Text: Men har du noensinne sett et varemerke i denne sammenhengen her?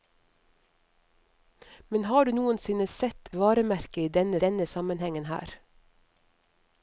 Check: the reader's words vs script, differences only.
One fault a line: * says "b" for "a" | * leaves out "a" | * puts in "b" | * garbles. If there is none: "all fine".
* leaves out "et"
* puts in "denne"